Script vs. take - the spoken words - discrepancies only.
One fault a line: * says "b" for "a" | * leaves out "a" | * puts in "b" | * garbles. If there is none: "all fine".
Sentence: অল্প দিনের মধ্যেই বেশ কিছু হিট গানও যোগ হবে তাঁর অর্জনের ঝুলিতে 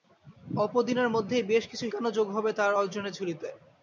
* leaves out "হিট"